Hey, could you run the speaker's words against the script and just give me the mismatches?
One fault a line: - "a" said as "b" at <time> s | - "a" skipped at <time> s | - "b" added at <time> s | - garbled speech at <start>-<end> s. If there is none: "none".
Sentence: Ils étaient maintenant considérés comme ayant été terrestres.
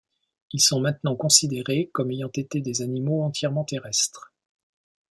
- "étaient" said as "sont" at 0.6 s
- "des animaux entièrement" added at 2.6 s